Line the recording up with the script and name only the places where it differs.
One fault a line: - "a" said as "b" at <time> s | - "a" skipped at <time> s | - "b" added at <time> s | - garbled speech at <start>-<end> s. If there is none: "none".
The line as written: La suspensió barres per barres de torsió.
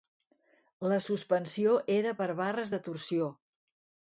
- "barres" said as "era" at 2.0 s